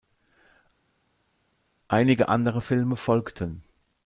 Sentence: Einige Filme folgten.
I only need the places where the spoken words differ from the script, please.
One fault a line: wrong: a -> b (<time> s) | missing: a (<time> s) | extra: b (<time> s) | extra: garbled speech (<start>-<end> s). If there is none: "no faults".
extra: andere (2.3 s)